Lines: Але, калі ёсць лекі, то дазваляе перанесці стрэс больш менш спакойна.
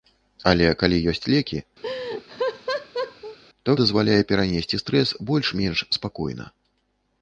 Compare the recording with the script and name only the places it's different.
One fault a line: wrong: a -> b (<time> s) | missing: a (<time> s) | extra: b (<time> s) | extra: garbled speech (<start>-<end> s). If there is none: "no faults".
no faults